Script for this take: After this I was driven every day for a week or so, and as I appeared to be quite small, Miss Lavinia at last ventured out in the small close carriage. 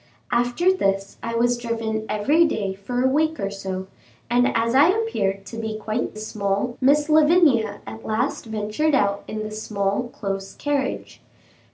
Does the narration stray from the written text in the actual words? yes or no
no